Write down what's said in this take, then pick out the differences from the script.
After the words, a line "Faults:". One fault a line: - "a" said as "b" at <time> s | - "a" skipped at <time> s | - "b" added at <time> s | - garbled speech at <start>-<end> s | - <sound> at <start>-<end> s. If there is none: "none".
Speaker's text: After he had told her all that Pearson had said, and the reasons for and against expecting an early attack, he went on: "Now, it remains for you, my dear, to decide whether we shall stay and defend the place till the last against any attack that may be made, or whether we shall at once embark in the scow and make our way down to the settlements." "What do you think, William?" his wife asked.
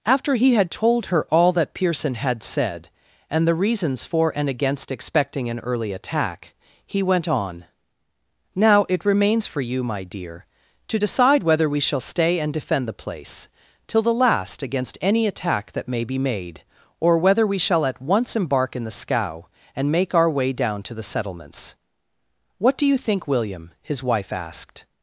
After he had told her all that Pearson had said, and the reasons for and against expecting an early attack, he went on: "Now, it remains for you, my dear, to decide whether we shall stay and defend the place till the last against any attack that may be made, or whether we shall at once embark in the scow and make our way down to the settlements." "What do you think, William?" his wife asked.
Faults:
none